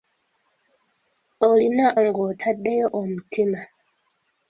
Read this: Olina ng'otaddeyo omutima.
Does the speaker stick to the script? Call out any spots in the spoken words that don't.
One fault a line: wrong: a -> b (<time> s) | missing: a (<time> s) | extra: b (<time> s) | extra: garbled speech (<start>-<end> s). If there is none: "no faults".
no faults